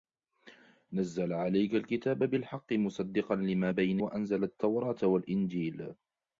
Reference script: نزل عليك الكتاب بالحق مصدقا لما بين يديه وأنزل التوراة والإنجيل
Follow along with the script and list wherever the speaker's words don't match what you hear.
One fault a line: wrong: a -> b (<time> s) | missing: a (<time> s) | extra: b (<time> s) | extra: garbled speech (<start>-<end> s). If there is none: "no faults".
missing: يديه (4.0 s)